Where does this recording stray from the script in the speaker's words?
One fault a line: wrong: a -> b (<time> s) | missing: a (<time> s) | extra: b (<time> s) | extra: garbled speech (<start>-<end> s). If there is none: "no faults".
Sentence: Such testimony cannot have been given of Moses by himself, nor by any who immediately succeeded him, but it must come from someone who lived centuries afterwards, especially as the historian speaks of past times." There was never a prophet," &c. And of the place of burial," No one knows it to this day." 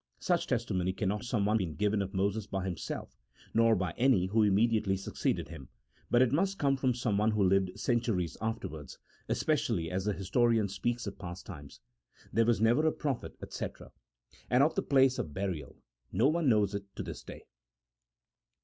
wrong: have -> someone (1.2 s)